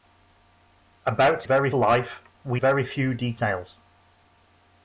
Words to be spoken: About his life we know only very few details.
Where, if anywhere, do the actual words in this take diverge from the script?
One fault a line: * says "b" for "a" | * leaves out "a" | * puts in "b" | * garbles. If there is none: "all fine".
* says "very" for "his"
* leaves out "know only"